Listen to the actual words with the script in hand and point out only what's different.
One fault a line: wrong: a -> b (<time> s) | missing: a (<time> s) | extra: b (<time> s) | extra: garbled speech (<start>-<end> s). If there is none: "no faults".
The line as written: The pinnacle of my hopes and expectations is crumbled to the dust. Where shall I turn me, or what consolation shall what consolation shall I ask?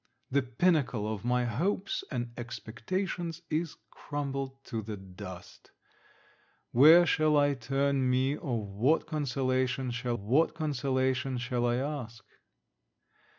no faults